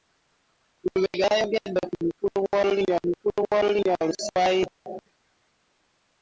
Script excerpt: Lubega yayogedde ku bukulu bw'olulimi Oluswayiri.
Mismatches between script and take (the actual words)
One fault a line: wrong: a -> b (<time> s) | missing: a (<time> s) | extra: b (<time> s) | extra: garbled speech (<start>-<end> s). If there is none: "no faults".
extra: bukulu bw'olulimi (3.1 s)